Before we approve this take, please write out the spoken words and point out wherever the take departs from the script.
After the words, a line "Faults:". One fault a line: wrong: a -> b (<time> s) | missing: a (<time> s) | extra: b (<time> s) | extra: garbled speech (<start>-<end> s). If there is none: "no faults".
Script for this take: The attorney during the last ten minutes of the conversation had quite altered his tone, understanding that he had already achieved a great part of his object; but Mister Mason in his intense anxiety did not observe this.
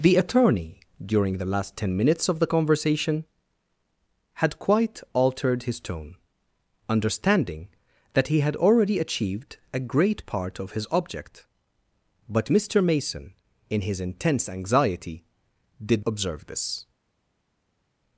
The attorney during the last ten minutes of the conversation had quite altered his tone, understanding that he had already achieved a great part of his object; but Mister Mason in his intense anxiety did observe this.
Faults:
missing: not (16.1 s)